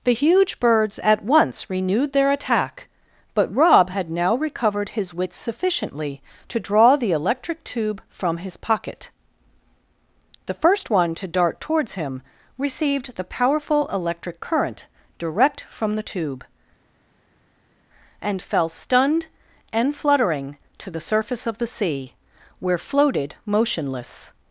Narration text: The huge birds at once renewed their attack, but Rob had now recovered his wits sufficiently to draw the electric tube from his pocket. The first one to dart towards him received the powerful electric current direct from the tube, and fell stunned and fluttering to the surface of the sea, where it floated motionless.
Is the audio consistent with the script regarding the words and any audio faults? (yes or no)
no